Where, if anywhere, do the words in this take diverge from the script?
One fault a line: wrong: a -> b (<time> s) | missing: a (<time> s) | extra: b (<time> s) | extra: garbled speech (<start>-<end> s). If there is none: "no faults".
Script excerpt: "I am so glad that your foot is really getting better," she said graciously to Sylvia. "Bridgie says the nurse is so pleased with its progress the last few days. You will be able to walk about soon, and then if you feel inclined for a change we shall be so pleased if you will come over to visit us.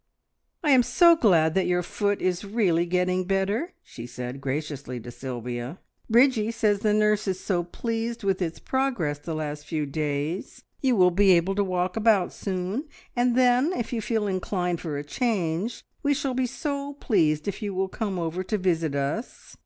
no faults